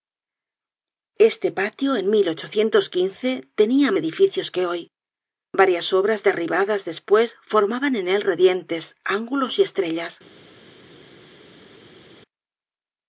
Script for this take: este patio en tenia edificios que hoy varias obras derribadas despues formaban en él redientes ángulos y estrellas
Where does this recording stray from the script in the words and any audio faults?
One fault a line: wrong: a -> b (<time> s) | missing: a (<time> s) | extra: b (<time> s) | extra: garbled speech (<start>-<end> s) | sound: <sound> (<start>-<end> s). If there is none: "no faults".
no faults